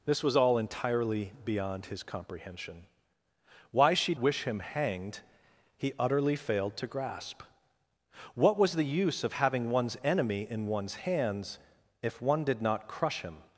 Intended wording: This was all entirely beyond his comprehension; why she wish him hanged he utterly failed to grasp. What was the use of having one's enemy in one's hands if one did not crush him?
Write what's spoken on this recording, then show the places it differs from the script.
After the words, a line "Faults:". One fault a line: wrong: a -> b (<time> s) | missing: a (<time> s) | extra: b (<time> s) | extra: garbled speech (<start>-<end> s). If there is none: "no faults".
This was all entirely beyond his comprehension; why she wish him hanged he utterly failed to grasp. What was the use of having one's enemy in one's hands if one did not crush him?
Faults:
no faults